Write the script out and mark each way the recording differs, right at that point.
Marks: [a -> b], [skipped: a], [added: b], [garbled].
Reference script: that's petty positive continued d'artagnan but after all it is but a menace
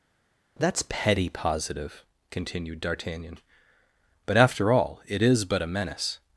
that's petty positive continued d'artagnan but after all it is but a menace